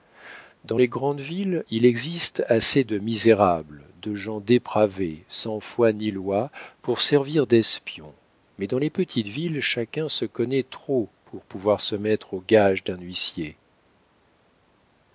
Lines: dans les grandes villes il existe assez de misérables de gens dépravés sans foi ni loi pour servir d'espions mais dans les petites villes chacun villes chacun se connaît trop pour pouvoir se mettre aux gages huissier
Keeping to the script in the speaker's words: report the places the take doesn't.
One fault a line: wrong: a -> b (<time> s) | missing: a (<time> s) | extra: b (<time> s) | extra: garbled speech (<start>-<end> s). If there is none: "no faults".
missing: villes chacun (10.1 s)
extra: d'un (12.8 s)